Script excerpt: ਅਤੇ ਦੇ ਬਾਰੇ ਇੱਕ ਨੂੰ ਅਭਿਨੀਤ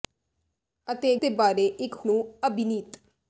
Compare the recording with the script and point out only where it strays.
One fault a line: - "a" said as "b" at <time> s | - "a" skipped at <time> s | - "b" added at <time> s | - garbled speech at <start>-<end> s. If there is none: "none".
none